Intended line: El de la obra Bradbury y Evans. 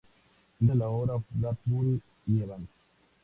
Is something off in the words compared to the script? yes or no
no